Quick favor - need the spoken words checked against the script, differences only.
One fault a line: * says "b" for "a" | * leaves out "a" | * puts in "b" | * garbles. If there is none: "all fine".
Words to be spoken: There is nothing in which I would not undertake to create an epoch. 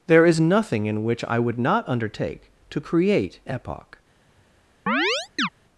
* leaves out "an"